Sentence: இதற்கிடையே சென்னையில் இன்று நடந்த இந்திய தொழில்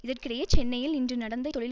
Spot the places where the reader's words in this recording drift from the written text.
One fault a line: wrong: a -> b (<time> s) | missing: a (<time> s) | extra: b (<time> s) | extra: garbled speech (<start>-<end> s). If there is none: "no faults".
missing: இந்திய (1.5 s)